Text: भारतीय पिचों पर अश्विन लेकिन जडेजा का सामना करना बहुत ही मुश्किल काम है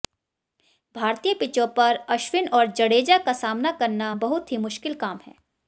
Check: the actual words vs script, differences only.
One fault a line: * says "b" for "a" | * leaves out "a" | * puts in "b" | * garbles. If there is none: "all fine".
* says "और" for "लेकिन"